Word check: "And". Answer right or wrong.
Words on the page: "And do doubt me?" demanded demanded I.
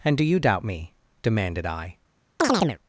right